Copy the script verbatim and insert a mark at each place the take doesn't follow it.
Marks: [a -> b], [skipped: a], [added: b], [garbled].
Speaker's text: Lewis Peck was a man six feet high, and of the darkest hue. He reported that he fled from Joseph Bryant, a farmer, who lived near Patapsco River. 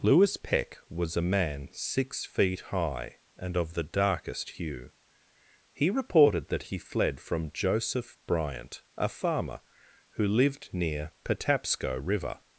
Lewis Peck was a man six feet high, and of the darkest hue. He reported that he fled from Joseph Bryant, a farmer, who lived near Patapsco River.